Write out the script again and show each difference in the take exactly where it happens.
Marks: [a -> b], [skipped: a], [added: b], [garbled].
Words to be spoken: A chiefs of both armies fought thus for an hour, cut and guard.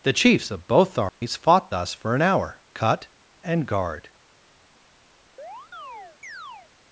[A -> The] chiefs of both armies fought thus for an hour, cut and guard.